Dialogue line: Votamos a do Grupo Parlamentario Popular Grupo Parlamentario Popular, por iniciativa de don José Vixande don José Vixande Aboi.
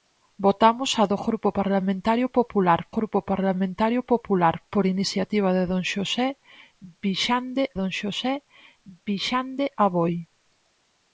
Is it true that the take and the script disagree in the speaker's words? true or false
false